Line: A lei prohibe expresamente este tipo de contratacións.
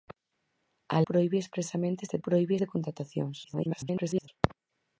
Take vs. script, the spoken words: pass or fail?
fail